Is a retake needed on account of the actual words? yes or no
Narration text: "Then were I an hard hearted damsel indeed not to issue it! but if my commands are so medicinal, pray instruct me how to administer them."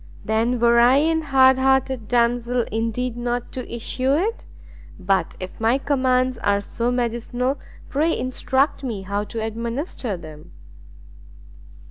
no